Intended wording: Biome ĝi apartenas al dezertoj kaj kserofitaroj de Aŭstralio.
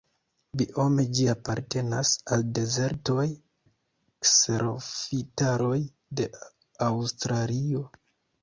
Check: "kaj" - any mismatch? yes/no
yes